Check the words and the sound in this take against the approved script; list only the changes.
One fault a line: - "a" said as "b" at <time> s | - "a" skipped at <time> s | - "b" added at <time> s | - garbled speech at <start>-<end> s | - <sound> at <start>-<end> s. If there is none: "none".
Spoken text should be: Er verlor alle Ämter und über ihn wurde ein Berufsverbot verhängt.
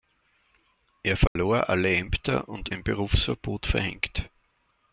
- dropout at 1.3-1.4 s
- "über ihn wurde" skipped at 2.7 s